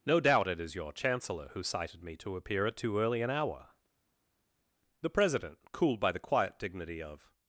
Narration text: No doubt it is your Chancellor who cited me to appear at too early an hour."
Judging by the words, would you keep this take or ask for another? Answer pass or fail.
fail